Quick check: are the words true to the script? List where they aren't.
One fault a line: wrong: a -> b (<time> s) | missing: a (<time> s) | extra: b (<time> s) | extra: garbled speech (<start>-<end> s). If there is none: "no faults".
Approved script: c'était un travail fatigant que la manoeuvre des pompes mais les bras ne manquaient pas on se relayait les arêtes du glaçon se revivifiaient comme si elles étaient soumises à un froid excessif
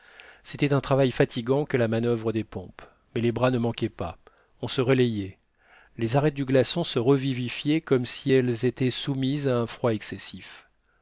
no faults